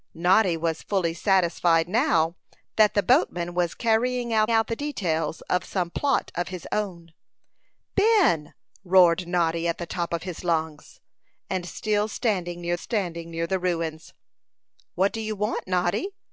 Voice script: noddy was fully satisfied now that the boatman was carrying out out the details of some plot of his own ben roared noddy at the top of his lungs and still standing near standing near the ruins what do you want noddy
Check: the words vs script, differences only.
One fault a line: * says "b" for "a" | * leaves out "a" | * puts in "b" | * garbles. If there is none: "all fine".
all fine